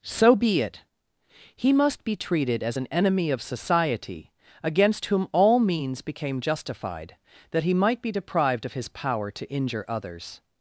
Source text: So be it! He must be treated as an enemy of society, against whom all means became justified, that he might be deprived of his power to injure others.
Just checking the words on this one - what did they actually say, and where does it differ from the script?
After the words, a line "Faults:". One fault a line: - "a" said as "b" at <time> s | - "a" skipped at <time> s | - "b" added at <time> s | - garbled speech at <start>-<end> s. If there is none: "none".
So be it! He must be treated as an enemy of society, against whom all means became justified, that he might be deprived of his power to injure others.
Faults:
none